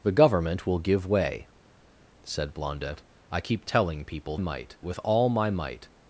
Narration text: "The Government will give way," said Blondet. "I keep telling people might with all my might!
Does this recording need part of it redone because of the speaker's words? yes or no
no